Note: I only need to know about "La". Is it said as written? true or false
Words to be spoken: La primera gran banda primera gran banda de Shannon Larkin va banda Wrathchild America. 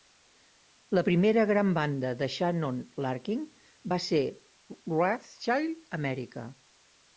true